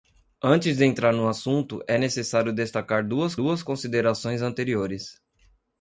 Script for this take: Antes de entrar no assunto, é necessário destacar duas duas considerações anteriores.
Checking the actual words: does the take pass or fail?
pass